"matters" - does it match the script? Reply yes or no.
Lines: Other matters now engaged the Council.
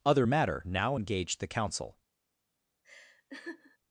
no